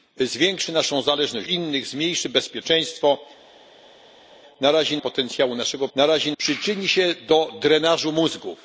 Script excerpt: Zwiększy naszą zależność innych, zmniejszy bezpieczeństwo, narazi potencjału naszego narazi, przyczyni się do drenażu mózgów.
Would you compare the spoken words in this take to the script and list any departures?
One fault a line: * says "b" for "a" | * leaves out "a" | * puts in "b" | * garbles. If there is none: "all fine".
all fine